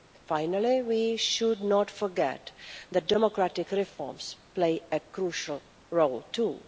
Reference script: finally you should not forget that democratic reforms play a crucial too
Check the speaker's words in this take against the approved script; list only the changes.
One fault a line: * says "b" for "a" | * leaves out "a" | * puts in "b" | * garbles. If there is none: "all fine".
* says "we" for "you"
* puts in "role"